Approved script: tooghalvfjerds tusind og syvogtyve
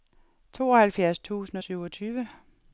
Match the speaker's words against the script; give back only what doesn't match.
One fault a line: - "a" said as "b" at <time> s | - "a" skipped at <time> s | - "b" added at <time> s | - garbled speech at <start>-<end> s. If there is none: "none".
none